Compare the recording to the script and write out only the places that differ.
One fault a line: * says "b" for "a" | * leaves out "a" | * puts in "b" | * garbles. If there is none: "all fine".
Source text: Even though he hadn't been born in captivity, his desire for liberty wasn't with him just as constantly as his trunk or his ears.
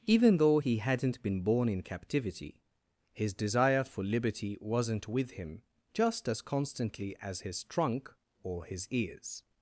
all fine